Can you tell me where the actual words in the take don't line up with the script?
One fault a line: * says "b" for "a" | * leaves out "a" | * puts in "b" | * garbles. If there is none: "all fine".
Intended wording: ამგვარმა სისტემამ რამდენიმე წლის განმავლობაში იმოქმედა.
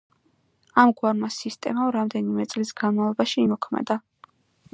all fine